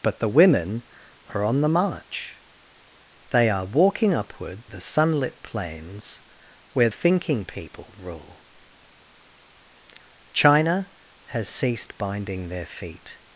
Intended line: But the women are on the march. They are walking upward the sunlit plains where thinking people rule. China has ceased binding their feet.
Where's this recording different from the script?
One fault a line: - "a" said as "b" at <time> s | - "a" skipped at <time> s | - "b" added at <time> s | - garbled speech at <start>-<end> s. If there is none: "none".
none